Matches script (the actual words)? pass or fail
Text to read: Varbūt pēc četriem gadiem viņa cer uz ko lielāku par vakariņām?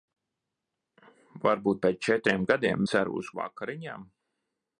fail